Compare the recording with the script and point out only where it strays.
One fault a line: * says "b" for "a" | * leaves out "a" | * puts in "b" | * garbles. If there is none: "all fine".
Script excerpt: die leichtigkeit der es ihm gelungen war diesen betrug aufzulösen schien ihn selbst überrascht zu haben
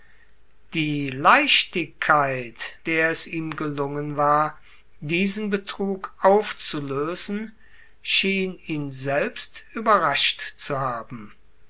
all fine